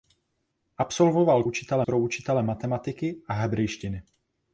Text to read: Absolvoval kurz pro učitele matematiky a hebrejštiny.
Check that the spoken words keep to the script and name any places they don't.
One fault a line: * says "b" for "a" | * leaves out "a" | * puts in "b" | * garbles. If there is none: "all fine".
* says "učitele" for "kurz"